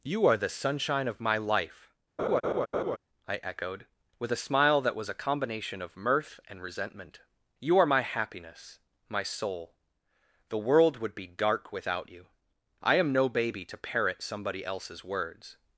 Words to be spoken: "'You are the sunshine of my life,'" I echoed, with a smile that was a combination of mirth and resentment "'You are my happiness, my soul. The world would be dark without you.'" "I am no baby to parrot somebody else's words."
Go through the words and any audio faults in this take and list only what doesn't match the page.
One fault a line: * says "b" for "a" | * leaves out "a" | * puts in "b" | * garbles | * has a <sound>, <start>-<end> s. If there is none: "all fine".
* has a laugh, 2.2-3.0 s